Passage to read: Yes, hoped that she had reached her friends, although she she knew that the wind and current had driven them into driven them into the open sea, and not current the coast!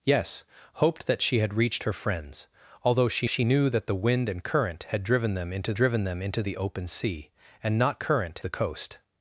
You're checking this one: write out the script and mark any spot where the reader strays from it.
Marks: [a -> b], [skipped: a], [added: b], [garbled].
Yes, hoped that she had reached her friends, although she she knew that the wind and current had driven them into driven them into the open sea, and not current the coast!